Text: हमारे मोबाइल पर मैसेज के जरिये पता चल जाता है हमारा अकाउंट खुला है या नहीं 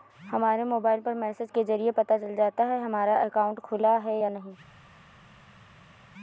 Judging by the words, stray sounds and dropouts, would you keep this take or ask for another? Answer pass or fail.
pass